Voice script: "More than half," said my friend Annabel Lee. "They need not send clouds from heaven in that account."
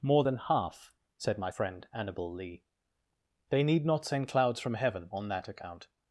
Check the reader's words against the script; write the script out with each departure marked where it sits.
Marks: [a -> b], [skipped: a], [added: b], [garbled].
"More than half," said my friend Annabel Lee. "They need not send clouds from heaven [in -> on] that account."